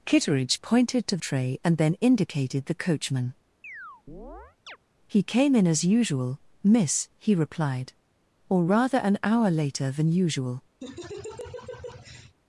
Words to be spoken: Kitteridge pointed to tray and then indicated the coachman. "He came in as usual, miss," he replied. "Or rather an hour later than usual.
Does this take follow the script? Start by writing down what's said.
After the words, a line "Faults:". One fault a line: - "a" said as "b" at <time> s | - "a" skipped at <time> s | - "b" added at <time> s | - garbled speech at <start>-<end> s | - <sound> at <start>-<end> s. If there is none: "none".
Kitteridge pointed to tray and then indicated the coachman. "He came in as usual, miss," he replied. "Or rather an hour later than usual.
Faults:
- chirp at 3.6-4.8 s
- laugh at 10.8-12.4 s